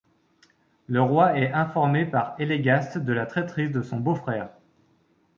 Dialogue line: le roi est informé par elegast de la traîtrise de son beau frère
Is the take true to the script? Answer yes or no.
yes